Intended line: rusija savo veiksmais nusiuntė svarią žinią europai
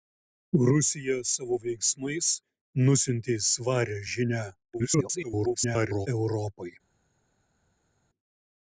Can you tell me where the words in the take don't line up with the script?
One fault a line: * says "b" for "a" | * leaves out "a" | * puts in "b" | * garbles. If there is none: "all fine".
* garbles